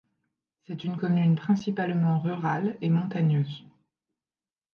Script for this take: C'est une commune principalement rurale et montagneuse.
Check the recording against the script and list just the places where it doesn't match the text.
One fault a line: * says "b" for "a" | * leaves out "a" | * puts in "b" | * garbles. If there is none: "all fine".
all fine